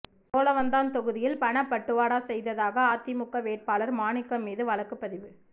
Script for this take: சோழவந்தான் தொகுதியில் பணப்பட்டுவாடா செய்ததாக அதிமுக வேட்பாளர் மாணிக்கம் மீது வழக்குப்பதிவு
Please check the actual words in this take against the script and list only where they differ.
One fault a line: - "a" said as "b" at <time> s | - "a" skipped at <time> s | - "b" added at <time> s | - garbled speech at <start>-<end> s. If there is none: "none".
none